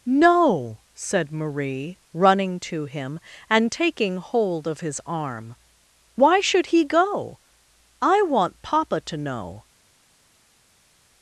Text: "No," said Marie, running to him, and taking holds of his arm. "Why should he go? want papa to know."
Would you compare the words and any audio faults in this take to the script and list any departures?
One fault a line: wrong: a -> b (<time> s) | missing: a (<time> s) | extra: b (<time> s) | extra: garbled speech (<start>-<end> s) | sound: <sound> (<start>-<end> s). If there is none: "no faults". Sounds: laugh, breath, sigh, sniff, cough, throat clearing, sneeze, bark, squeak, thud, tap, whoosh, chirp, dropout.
wrong: holds -> hold (4.2 s)
extra: I (8.0 s)